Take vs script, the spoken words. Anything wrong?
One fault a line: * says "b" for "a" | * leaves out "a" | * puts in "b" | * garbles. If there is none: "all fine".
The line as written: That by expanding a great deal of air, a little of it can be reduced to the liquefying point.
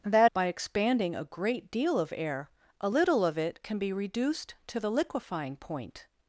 all fine